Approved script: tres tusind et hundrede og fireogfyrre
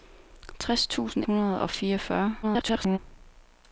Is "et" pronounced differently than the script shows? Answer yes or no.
yes